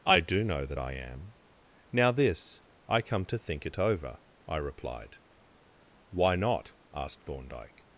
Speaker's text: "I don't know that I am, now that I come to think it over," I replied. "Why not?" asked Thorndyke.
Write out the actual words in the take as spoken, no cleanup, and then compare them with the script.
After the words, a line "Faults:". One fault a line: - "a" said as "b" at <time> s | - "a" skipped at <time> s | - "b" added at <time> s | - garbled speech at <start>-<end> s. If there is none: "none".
"I do know that I am, now this I come to think it over," I replied. "Why not?" asked Thorndyke.
Faults:
- "don't" said as "do" at 0.2 s
- "that" said as "this" at 2.1 s